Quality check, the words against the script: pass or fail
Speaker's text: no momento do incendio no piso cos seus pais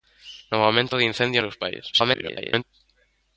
fail